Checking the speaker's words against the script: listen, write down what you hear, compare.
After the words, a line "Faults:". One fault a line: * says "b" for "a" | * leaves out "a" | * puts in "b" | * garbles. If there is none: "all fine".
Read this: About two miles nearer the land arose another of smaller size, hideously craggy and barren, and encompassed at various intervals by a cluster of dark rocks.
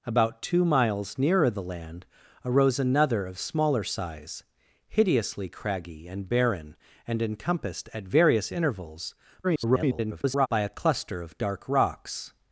About two miles nearer the land arose another of smaller size, hideously craggy and barren, and encompassed at various intervals [garbled] by a cluster of dark rocks.
Faults:
* garbles